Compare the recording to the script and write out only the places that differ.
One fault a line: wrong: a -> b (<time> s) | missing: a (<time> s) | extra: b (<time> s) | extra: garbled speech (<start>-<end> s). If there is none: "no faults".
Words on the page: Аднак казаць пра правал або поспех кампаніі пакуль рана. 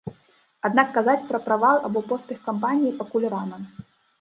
no faults